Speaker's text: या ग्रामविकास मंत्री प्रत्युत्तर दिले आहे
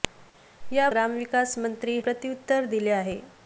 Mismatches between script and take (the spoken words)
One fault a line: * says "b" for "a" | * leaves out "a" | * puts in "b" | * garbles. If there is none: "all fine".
all fine